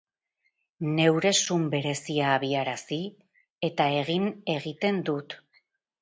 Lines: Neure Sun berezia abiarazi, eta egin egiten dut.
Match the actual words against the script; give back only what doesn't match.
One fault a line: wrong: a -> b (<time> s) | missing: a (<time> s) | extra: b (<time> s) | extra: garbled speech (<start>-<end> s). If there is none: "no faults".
no faults